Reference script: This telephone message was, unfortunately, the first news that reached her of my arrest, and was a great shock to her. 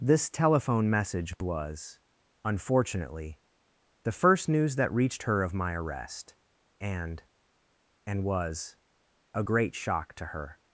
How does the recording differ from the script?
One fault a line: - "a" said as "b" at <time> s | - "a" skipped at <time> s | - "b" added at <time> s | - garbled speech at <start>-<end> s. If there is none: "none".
- "and" added at 8.1 s